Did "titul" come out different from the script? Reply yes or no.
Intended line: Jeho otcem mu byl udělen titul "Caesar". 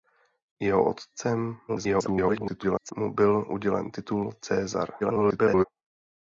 no